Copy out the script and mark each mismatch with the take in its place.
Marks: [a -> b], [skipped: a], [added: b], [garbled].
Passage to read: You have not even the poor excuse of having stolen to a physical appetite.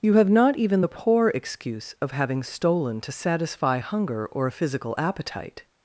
You have not even the poor excuse of having stolen to [added: satisfy hunger or] a physical appetite.